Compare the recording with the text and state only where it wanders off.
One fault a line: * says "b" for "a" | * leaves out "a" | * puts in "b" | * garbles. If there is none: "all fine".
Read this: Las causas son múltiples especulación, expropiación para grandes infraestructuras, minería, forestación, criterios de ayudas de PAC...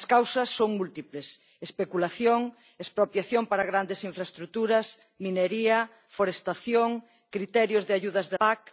all fine